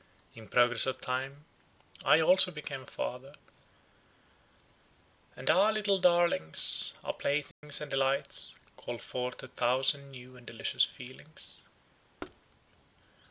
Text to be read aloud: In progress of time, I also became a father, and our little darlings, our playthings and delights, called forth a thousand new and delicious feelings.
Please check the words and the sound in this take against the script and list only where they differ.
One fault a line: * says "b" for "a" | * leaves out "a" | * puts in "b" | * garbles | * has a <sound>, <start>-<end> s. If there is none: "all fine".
* has a dropout, 7.5-7.6 s
* has a thud, 12.2-12.4 s